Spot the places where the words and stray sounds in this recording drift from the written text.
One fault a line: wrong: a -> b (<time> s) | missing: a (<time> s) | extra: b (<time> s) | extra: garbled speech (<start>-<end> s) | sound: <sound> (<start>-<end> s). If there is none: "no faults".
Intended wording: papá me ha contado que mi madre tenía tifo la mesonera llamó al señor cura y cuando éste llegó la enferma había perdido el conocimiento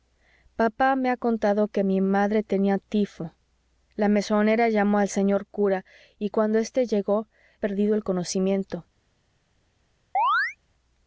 missing: la enferma había (7.3 s)
sound: chirp (10.1-10.6 s)